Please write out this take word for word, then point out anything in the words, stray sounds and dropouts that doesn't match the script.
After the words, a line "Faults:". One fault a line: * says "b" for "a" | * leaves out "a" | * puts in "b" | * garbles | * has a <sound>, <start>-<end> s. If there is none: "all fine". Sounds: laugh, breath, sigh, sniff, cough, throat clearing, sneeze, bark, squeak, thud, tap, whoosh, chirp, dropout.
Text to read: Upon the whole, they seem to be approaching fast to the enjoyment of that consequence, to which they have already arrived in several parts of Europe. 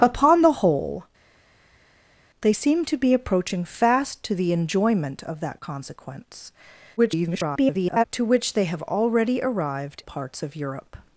Upon the whole, they seem to be approaching fast to the enjoyment of that consequence, [garbled] to which they have already arrived parts of Europe.
Faults:
* garbles
* leaves out "in several"